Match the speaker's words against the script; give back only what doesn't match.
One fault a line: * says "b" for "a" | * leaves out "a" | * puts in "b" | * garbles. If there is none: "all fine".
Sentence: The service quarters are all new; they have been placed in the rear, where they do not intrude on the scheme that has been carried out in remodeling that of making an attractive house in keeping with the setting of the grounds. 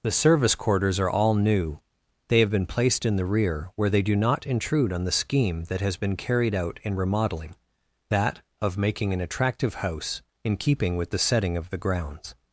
all fine